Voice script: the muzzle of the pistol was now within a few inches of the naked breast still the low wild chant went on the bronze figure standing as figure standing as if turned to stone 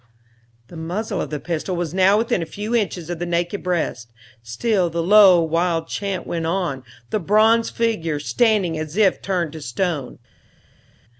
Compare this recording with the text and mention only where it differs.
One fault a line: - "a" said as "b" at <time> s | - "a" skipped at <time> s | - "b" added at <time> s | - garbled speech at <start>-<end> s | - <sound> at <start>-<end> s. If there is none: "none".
- "figure standing as" skipped at 9.0 s